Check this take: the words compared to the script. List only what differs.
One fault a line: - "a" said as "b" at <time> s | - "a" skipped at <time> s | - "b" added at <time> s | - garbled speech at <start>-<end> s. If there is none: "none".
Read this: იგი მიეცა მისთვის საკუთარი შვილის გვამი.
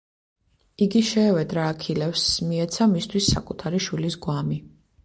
- "შეევედრა აქილევსს" added at 1.1 s